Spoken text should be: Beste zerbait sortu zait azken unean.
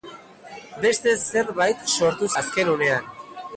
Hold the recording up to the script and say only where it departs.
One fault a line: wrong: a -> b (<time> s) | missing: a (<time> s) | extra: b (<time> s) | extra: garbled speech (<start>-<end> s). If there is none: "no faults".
missing: zait (2.3 s)